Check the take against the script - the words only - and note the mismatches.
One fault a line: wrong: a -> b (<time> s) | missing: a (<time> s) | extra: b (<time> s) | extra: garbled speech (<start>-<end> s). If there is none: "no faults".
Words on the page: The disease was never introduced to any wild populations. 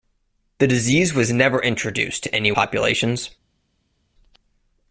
missing: wild (2.5 s)